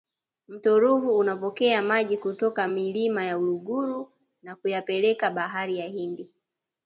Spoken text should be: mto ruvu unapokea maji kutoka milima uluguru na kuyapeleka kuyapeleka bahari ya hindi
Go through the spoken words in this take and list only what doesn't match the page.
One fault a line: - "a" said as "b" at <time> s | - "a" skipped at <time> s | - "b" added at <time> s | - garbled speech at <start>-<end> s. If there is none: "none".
- "ya" added at 3.3 s
- "kuyapeleka" skipped at 5.3 s